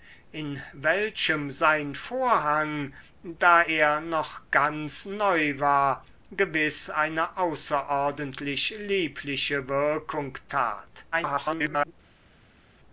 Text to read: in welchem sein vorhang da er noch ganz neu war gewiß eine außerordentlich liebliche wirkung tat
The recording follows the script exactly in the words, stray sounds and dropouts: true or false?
false